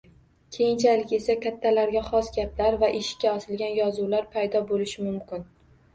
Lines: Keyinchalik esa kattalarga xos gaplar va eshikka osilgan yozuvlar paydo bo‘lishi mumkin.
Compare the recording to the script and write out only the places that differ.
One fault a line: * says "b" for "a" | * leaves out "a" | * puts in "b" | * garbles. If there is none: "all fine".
all fine